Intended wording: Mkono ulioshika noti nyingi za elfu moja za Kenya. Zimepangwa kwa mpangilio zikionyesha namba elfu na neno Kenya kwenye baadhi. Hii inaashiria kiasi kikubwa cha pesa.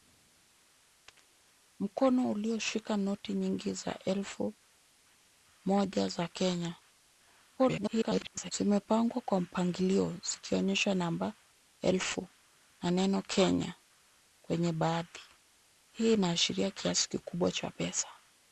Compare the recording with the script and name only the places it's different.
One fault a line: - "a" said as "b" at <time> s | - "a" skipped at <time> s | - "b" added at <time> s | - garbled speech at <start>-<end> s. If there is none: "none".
- garbled speech at 7.6-8.5 s